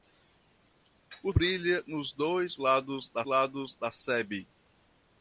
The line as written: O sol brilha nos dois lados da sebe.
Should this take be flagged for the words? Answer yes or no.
yes